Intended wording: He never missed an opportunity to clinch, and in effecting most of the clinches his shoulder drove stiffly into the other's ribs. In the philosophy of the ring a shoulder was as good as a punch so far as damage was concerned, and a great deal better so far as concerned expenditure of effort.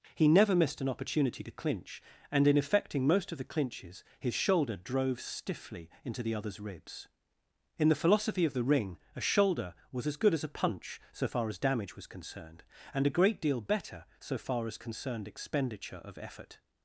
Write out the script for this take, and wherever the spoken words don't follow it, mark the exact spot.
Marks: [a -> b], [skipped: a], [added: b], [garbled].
He never missed an opportunity to clinch, and in effecting most of the clinches his shoulder drove stiffly into the other's ribs. In the philosophy of the ring a shoulder was as good as a punch so far as damage was concerned, and a great deal better so far as concerned expenditure of effort.